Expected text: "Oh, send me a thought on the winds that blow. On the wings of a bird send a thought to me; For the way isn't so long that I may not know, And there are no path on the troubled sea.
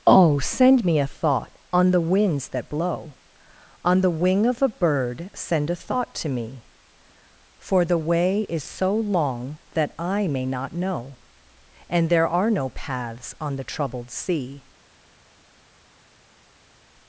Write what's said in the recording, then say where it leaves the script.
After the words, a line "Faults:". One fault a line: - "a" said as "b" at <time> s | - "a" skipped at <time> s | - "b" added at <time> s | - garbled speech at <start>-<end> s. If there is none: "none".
"Oh, send me a thought on the winds that blow. On the wing of a bird send a thought to me; For the way is so long that I may not know, And there are no paths on the troubled sea.
Faults:
- "wings" said as "wing" at 4.1 s
- "isn't" said as "is" at 8.5 s
- "path" said as "paths" at 12.7 s